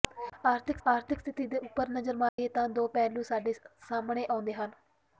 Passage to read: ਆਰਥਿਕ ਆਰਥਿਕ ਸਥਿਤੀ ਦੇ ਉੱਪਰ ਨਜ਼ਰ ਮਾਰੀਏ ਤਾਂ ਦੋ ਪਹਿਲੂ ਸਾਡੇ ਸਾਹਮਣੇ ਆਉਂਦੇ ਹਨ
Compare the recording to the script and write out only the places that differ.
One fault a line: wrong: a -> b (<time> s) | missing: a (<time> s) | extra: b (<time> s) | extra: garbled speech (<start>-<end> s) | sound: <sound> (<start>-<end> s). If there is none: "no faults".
sound: dropout (2.3-2.4 s)